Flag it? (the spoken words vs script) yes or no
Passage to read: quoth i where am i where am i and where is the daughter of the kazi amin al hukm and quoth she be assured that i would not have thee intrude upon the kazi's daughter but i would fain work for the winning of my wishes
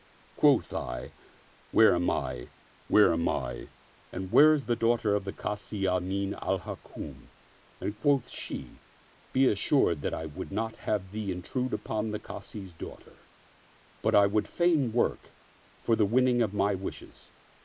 no